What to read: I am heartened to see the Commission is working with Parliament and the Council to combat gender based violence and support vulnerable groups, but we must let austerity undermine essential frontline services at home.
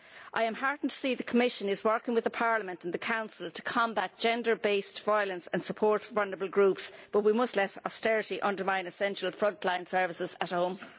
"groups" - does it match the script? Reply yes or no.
yes